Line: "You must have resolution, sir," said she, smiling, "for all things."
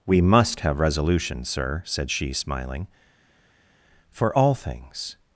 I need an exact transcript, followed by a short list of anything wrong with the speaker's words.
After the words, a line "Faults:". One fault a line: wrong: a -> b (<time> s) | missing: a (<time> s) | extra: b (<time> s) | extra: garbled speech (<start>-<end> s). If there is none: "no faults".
"We must have resolution, sir," said she, smiling, "for all things."
Faults:
wrong: You -> We (0.1 s)